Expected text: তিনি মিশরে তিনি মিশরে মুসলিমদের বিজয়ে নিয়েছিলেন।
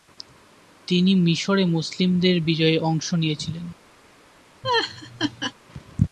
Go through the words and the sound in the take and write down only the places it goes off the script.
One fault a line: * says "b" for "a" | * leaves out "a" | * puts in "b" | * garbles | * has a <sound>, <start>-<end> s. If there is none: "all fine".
* leaves out "তিনি মিশরে"
* puts in "অংশ"
* has a laugh, 4.6-5.5 s